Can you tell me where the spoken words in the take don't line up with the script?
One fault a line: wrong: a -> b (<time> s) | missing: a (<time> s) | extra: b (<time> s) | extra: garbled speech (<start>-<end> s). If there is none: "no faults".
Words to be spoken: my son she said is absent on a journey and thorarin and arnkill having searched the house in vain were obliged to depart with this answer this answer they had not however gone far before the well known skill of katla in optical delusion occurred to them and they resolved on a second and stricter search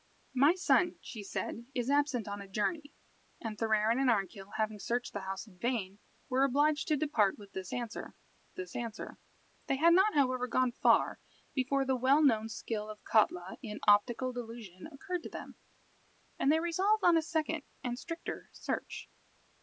no faults